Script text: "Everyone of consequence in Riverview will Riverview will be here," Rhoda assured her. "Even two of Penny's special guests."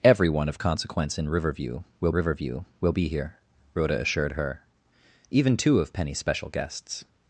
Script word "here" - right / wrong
right